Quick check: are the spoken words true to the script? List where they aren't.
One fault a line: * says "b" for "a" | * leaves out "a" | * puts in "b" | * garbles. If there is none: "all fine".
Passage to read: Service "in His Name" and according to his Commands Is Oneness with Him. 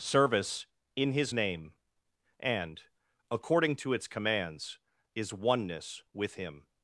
* says "its" for "his"